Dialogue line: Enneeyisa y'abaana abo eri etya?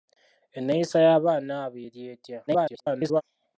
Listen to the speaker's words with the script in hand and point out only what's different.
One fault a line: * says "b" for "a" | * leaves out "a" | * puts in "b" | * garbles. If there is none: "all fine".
* garbles